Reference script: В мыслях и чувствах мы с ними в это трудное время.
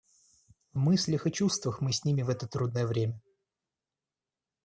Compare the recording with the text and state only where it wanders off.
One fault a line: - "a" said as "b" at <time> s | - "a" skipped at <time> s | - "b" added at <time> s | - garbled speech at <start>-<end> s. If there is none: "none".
none